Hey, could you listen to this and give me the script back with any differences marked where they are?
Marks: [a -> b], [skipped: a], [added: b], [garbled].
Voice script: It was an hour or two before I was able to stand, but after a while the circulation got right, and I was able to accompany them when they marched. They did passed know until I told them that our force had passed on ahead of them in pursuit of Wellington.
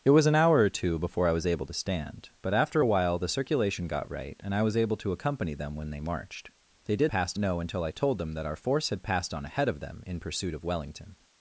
It was an hour or two before I was able to stand, but after a while the circulation got right, and I was able to accompany them when they marched. They did passed know until I told them that our force had passed on ahead of them in pursuit of Wellington.